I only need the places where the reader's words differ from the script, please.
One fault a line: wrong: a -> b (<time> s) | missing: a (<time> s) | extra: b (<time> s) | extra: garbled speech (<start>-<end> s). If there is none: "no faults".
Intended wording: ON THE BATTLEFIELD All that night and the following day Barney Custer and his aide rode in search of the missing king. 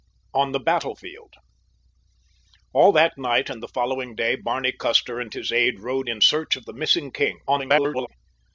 extra: garbled speech (7.5-8.1 s)